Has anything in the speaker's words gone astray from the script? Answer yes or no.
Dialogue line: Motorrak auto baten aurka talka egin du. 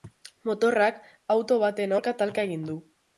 no